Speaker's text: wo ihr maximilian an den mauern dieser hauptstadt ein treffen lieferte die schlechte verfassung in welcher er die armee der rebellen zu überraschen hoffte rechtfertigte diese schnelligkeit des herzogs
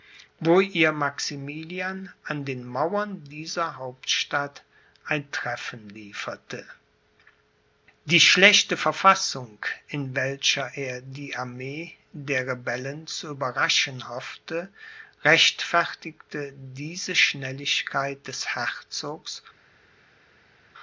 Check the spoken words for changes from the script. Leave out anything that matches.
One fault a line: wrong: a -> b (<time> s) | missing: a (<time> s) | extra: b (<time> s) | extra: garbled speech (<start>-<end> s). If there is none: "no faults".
no faults